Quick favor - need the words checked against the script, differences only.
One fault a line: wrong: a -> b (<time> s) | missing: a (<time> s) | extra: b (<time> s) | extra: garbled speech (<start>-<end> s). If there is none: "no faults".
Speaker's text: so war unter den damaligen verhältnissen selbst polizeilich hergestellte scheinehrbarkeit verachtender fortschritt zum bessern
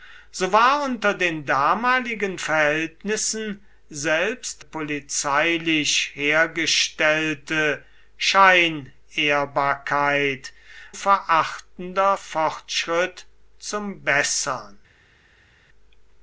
no faults